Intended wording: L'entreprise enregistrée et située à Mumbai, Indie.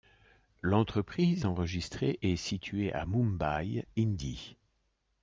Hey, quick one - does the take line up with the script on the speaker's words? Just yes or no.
yes